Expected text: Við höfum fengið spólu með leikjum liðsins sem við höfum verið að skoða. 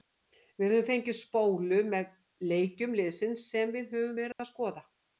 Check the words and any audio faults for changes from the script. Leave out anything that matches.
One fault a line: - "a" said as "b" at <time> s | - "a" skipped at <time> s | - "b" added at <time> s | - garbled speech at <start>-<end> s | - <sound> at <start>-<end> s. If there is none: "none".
- dropout at 4.3-4.4 s